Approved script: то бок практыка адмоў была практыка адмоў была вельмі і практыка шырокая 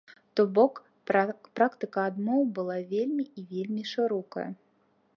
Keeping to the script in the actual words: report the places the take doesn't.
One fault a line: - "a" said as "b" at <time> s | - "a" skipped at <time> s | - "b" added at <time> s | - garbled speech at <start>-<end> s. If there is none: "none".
- "практыка адмоў была" skipped at 2.8 s
- "практыка" said as "вельмі" at 3.5 s